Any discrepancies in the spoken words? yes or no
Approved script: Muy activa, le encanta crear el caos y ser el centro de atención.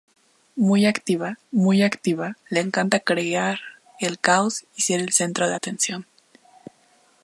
yes